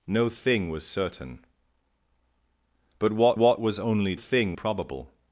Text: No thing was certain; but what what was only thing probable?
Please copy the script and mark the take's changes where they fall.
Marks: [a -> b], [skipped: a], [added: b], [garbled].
No thing was certain; but what what was only thing probable?